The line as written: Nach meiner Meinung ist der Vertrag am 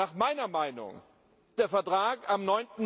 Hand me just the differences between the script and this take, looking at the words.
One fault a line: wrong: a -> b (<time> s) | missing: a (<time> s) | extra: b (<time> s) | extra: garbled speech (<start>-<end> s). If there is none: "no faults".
missing: ist (1.0 s)